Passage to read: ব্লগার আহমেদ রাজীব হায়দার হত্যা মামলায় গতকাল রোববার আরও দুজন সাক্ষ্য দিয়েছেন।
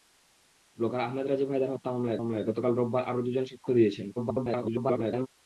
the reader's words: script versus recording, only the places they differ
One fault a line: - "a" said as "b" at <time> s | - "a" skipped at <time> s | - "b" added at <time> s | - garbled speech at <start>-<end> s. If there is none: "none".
- "মামলায়" added at 2.2 s
- garbled speech at 4.2-5.3 s